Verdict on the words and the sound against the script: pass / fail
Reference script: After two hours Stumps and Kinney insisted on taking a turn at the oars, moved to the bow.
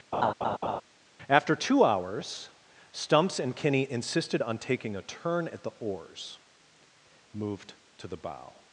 fail